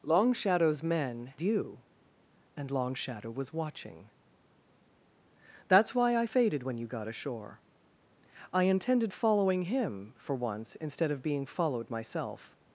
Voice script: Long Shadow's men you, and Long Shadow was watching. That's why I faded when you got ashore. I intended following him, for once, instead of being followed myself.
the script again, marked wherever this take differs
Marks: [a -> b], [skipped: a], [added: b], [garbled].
Long Shadow's men you, and Long Shadow was watching. That's why I faded when you got ashore. I intended following him, for once, instead of being followed myself.